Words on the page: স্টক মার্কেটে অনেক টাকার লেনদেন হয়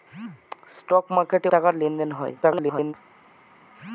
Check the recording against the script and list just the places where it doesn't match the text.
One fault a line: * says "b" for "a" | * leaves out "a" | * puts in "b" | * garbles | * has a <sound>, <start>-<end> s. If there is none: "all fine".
* leaves out "অনেক"
* garbles